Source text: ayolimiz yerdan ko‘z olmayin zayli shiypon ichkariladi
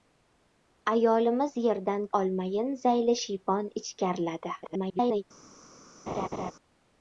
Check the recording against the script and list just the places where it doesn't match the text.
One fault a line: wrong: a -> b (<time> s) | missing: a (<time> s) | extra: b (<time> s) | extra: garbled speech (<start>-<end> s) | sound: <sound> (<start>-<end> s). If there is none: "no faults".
missing: ko‘z (2.1 s)
extra: garbled speech (4.6-5.2 s)
sound: laugh (6.1-6.5 s)